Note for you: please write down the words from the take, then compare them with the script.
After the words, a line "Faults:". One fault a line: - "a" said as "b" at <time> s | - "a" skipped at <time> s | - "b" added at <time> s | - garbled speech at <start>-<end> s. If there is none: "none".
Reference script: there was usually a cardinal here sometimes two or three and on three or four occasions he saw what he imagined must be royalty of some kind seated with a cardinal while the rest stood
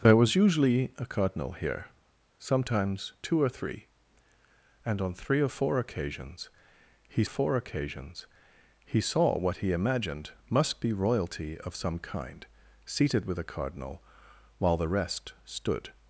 there was usually a cardinal here sometimes two or three and on three or four occasions he four occasions he saw what he imagined must be royalty of some kind seated with a cardinal while the rest stood
Faults:
- "four occasions he" added at 7.3 s